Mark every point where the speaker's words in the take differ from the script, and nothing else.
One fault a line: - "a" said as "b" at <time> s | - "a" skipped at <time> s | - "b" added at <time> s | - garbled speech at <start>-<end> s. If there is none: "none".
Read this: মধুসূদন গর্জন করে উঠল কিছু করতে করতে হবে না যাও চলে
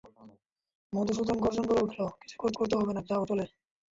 none